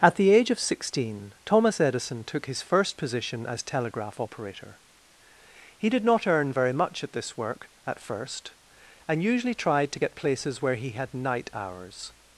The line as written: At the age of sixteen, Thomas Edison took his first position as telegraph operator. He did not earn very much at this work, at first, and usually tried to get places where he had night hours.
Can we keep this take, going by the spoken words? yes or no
yes